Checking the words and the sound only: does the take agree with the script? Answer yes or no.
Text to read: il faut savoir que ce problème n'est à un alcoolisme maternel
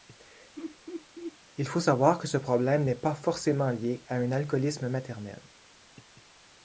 no